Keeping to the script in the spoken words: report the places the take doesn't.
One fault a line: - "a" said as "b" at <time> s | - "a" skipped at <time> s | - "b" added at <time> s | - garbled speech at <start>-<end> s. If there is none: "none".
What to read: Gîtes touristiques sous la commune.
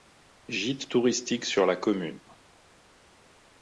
- "sous" said as "sur" at 1.4 s